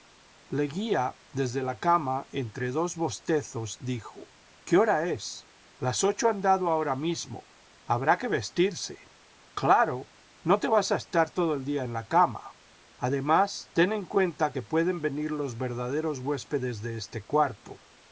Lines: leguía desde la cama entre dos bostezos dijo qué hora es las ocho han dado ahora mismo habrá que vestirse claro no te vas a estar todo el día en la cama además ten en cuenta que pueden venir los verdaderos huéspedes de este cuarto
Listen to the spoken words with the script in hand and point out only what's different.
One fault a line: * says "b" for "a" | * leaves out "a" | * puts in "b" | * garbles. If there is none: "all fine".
all fine